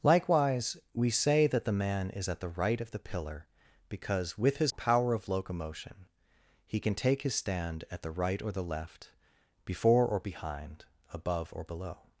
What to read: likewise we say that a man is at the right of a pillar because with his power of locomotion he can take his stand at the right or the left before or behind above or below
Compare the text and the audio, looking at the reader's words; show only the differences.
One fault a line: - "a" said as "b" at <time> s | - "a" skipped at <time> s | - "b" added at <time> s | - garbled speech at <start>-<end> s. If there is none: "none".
- "a" said as "the" at 1.6 s
- "a" said as "the" at 2.9 s